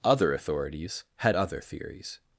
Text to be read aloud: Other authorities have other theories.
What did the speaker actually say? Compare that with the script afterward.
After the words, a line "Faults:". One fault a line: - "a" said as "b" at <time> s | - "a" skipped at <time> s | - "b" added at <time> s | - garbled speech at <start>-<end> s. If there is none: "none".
Other authorities had other theories.
Faults:
- "have" said as "had" at 1.2 s